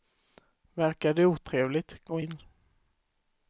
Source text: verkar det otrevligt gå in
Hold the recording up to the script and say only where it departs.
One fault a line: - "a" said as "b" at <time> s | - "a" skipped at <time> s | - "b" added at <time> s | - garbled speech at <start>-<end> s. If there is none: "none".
none